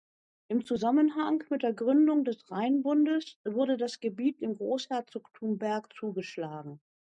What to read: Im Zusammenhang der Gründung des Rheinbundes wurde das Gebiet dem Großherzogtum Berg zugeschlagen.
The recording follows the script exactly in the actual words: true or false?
false